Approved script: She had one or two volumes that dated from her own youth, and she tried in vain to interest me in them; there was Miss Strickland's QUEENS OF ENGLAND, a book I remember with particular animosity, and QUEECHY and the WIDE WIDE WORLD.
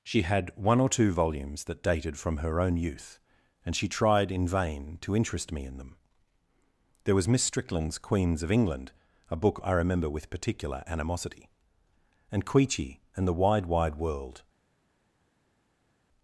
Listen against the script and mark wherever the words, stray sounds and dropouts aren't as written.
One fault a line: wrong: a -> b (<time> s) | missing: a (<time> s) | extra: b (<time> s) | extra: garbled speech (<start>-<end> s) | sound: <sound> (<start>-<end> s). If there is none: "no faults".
no faults